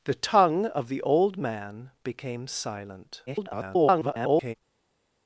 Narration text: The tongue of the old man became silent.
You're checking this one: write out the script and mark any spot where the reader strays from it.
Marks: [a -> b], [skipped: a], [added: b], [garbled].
The tongue of the old man became silent. [garbled]